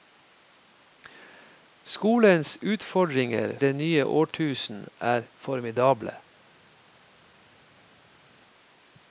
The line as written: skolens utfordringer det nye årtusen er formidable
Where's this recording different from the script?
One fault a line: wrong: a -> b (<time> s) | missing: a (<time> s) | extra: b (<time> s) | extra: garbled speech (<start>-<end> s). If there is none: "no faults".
no faults